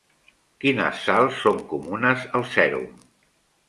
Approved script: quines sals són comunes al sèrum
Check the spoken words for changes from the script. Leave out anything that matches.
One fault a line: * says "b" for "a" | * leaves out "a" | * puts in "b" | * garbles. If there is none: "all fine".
all fine